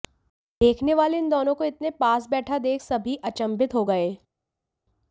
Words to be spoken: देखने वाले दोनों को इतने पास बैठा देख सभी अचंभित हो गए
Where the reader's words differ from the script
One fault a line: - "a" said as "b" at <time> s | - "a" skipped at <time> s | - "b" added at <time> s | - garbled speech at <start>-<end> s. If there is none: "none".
- "इन" added at 1.2 s